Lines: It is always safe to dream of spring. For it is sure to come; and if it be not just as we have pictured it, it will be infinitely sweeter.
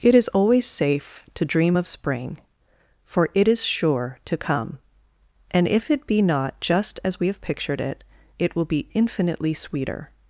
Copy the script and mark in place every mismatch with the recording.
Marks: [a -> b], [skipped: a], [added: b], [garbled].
It is always safe to dream of spring. For it is sure to come; and if it be not just as we have pictured it, it will be infinitely sweeter.